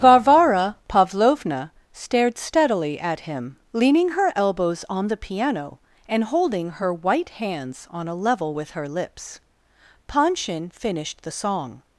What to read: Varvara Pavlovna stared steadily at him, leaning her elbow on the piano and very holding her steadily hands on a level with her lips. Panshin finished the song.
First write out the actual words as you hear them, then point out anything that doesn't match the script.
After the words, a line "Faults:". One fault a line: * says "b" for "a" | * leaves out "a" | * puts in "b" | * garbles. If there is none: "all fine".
Varvara Pavlovna stared steadily at him, leaning her elbows on the piano and holding her white hands on a level with her lips. Panshin finished the song.
Faults:
* says "elbows" for "elbow"
* leaves out "very"
* says "white" for "steadily"